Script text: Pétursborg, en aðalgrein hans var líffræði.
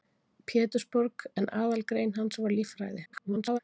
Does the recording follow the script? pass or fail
fail